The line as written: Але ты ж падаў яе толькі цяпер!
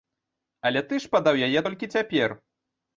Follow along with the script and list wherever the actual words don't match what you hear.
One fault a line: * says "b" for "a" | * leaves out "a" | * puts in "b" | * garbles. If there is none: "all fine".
all fine